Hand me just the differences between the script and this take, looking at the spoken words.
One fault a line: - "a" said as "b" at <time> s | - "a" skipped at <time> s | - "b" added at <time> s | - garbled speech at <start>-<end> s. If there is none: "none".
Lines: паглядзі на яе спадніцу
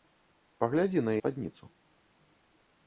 - "яе" skipped at 1.1 s